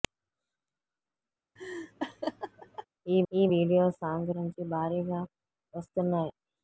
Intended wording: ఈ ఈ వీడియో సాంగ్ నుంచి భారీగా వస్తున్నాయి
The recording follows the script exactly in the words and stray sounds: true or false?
false